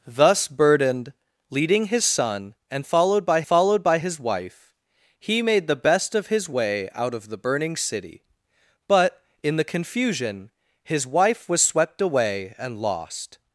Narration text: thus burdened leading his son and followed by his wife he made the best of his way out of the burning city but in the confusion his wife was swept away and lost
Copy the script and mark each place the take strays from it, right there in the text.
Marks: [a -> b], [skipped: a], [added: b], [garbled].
thus burdened leading his son and followed by [added: followed by] his wife he made the best of his way out of the burning city but in the confusion his wife was swept away and lost